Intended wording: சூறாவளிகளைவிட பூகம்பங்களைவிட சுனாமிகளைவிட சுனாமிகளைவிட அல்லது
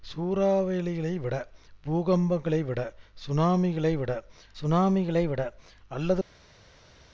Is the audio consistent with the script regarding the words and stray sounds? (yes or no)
yes